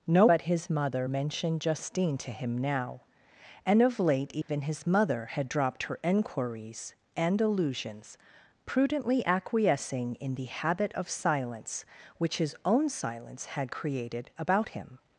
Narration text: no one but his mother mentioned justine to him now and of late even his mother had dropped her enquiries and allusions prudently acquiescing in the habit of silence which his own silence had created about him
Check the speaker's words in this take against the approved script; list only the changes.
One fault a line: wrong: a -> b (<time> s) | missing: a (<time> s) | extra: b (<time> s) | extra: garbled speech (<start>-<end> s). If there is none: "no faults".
missing: one (0.2 s)